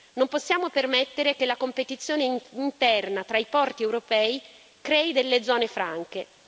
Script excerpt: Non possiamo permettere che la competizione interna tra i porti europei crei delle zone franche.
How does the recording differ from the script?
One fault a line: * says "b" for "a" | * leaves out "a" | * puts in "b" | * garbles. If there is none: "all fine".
all fine